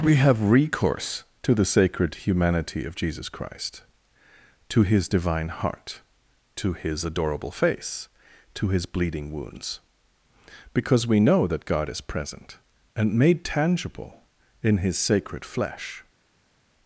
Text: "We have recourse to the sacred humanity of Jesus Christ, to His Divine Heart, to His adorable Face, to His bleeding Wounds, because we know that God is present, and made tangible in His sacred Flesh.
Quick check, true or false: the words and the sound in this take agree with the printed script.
true